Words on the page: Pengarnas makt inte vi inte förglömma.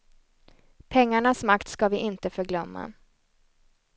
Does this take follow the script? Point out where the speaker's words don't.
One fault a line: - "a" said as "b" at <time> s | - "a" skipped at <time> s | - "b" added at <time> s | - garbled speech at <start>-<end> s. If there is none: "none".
- "inte" said as "ska" at 1.7 s